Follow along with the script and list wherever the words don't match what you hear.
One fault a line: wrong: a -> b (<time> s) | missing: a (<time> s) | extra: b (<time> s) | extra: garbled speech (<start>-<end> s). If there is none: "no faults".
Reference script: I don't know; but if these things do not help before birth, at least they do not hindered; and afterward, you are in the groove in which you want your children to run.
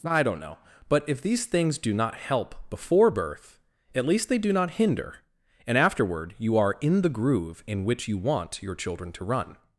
wrong: hindered -> hinder (4.7 s)